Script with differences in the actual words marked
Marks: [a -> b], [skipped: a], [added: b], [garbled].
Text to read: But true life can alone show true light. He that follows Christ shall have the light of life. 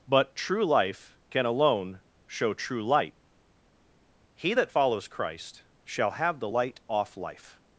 But true life can alone show true light. He that follows Christ shall have the light [of -> off] life.